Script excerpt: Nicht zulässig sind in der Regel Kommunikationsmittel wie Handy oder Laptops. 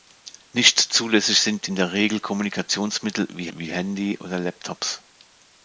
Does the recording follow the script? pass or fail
fail